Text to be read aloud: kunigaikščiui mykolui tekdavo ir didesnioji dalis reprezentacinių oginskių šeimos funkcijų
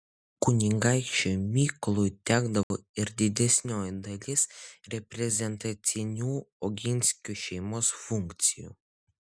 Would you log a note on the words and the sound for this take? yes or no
yes